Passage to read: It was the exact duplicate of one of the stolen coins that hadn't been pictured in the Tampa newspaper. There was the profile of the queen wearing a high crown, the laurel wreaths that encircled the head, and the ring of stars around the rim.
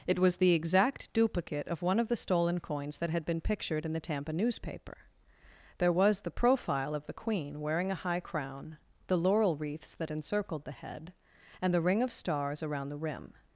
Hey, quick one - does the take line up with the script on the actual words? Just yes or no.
no